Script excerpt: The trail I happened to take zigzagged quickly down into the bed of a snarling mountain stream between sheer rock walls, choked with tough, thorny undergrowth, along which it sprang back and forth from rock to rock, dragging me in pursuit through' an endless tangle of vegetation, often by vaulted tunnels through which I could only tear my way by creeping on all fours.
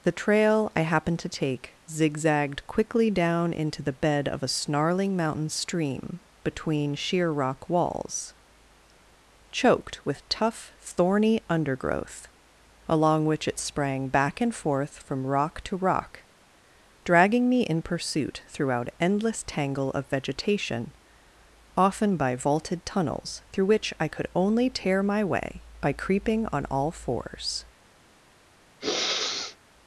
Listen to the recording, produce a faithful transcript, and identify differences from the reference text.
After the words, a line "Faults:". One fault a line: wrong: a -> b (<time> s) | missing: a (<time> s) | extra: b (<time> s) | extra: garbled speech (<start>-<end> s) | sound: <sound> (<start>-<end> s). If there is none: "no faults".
The trail I happened to take zigzagged quickly down into the bed of a snarling mountain stream between sheer rock walls, choked with tough, thorny undergrowth, along which it sprang back and forth from rock to rock, dragging me in pursuit throughout endless tangle of vegetation, often by vaulted tunnels through which I could only tear my way by creeping on all fours.
Faults:
wrong: through an -> throughout (18.5 s)
sound: sniff (28.8-29.6 s)